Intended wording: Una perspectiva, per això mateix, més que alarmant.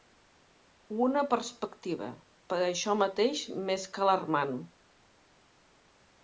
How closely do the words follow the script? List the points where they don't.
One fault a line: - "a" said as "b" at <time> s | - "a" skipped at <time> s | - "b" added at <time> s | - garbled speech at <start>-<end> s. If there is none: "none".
none